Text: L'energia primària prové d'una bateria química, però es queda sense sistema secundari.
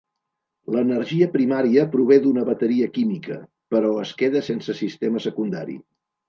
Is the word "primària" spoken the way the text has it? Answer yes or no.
yes